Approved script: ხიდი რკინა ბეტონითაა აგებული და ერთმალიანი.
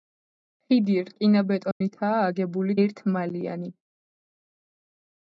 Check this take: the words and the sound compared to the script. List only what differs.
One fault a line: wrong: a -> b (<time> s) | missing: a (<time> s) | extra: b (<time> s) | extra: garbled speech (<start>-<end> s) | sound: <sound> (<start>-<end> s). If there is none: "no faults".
sound: dropout (1.7-1.8 s)
missing: და (2.8 s)